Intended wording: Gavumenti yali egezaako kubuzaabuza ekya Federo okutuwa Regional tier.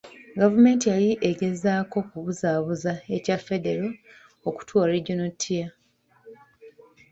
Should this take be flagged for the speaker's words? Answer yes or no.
no